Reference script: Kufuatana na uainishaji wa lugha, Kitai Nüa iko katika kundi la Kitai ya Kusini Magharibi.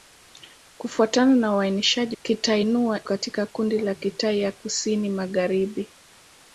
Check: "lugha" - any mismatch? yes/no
yes